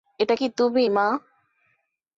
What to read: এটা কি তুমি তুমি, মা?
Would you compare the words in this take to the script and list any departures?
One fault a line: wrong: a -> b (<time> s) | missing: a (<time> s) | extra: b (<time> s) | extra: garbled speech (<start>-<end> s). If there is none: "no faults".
missing: তুমি (0.8 s)